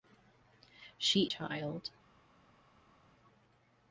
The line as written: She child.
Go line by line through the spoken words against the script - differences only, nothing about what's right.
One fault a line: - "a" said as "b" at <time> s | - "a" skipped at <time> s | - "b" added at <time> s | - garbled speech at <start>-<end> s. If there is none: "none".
none